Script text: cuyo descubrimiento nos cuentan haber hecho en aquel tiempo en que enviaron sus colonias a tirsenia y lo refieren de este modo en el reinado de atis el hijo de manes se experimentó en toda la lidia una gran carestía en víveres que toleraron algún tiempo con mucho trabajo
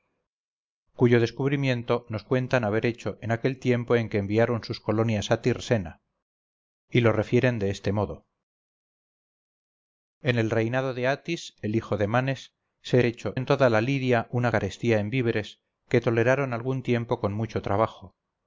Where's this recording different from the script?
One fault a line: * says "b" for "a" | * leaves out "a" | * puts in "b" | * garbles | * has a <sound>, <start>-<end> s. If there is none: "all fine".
* says "hecho" for "experimentó"
* leaves out "gran"